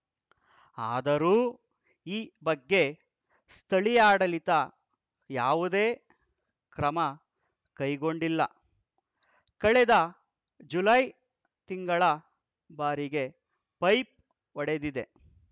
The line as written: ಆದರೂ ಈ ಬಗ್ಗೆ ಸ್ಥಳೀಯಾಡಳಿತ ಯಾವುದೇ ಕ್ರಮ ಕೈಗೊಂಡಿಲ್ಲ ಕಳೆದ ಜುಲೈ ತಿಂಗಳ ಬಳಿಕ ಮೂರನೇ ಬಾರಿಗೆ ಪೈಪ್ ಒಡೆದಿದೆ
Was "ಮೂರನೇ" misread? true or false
true